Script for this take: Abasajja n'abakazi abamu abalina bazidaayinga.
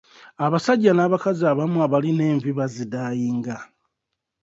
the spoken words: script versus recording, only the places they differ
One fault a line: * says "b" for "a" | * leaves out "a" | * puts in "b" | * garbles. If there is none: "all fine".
* puts in "envi"